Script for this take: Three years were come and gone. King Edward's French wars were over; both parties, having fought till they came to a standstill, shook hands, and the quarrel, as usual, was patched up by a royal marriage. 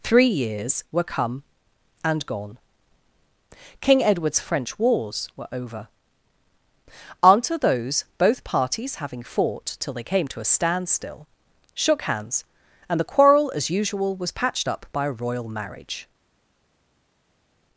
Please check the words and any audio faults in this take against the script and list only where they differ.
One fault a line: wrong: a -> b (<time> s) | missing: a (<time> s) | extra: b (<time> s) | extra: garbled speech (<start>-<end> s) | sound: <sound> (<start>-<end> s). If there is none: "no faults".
extra: unto those (7.2 s)